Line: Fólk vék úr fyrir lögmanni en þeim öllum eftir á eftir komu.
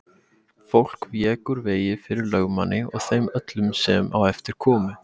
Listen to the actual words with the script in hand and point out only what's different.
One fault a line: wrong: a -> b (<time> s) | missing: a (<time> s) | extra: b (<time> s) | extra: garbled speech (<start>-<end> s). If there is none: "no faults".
extra: vegi (1.7 s)
wrong: en -> og (2.9 s)
wrong: eftir -> sem (3.9 s)